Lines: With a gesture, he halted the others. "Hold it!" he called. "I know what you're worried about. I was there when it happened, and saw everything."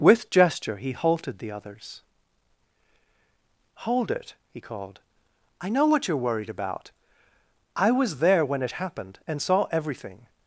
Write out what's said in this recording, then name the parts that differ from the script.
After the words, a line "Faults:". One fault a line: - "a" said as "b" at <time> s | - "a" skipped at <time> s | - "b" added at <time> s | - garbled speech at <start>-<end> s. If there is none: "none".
With gesture, he halted the others. "Hold it!" he called. "I know what you're worried about. I was there when it happened, and saw everything."
Faults:
- "a" skipped at 0.3 s